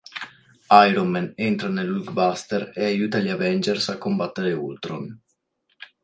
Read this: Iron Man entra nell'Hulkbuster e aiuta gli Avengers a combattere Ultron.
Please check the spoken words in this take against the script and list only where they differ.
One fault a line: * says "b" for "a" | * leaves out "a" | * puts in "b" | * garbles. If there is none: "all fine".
all fine